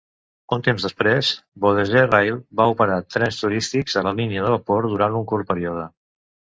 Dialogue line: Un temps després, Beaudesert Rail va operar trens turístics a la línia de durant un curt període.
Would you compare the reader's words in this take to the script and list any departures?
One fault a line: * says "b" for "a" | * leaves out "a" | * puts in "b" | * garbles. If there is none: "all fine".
* puts in "vapor"